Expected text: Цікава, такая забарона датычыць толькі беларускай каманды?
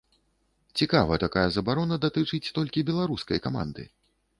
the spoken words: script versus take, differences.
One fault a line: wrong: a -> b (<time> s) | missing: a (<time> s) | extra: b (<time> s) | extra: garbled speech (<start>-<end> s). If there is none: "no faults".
no faults